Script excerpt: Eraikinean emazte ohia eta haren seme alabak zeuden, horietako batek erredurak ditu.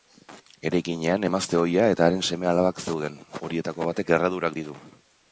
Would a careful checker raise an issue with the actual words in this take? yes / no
no